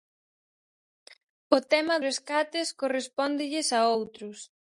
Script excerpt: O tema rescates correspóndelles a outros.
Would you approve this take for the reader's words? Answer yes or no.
yes